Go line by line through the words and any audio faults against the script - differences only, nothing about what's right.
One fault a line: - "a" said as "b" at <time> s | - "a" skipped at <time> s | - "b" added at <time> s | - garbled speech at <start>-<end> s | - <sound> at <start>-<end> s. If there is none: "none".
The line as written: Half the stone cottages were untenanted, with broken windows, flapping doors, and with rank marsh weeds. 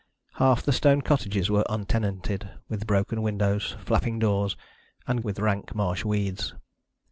none